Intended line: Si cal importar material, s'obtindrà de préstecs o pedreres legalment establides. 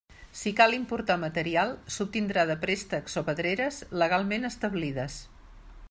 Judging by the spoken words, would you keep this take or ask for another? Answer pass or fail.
pass